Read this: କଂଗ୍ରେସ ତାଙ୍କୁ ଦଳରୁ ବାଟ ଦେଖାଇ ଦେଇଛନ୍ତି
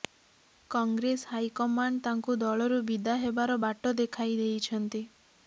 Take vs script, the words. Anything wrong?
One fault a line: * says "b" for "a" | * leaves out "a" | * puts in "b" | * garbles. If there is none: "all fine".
* puts in "ହାଇକମାଣ୍ଡ"
* puts in "ବିଦା ହେବାର"